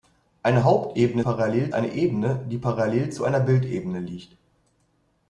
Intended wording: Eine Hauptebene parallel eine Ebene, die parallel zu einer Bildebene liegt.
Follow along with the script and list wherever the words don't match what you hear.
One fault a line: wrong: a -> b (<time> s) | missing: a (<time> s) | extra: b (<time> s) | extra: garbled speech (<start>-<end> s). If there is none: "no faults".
no faults